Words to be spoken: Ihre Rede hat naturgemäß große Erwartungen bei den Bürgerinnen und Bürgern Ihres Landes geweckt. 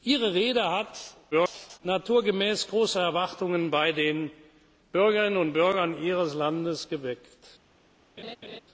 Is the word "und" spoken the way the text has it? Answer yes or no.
yes